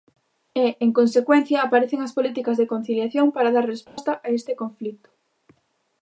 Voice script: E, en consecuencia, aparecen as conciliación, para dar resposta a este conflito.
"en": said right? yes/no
yes